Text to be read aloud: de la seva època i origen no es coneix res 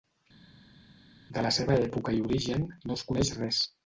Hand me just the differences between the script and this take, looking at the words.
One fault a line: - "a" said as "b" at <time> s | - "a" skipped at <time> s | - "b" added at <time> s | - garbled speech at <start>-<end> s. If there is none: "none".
none